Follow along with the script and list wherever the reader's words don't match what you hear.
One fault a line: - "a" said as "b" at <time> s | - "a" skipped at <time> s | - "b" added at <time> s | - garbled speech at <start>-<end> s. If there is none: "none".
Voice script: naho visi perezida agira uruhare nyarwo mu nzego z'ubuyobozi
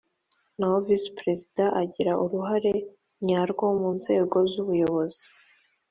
none